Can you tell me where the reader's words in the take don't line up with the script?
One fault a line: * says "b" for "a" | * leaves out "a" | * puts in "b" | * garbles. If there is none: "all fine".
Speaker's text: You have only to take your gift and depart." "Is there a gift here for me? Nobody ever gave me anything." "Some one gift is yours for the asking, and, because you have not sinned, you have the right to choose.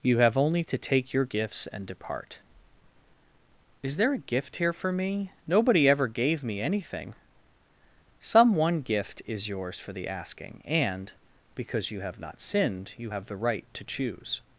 * says "gifts" for "gift"